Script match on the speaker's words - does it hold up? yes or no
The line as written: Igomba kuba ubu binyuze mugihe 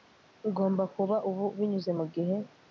yes